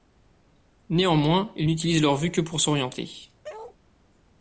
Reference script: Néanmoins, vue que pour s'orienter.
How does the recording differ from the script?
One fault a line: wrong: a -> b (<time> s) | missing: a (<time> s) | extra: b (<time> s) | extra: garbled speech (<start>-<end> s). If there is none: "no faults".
extra: ils n'utilisent leur (1.6 s)